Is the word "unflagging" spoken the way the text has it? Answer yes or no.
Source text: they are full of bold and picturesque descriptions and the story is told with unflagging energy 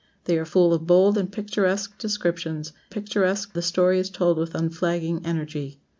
yes